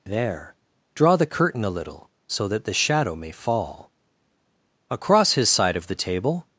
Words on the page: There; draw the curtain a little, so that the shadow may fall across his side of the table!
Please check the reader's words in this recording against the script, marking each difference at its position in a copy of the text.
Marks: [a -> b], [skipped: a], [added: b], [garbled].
There; draw the curtain a little, so that the shadow may fall across his side of the table!